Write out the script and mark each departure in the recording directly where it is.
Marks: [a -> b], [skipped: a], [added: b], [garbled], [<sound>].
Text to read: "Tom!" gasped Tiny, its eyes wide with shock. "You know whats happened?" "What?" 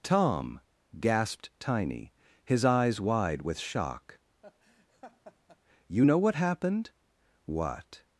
"Tom!" gasped Tiny, [its -> his] eyes wide with shock. [laugh] "You know [whats -> what] happened?" "What?"